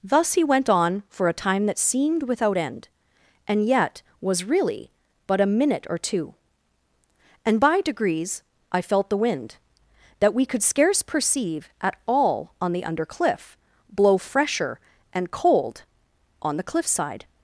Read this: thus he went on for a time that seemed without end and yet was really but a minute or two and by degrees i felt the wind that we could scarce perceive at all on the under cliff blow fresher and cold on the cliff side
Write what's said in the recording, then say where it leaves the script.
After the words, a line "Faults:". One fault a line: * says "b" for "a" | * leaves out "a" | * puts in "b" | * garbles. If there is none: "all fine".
thus he went on for a time that seemed without end and yet was really but a minute or two and by degrees i felt the wind that we could scarce perceive at all on the under cliff blow fresher and cold on the cliff side
Faults:
all fine